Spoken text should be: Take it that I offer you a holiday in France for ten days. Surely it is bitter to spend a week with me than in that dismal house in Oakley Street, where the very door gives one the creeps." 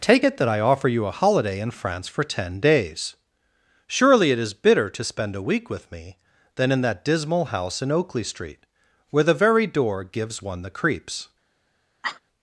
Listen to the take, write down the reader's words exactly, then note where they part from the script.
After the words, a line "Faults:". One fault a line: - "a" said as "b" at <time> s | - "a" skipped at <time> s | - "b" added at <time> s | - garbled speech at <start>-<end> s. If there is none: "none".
Take it that I offer you a holiday in France for ten days. Surely it is bitter to spend a week with me than in that dismal house in Oakley Street, where the very door gives one the creeps."
Faults:
none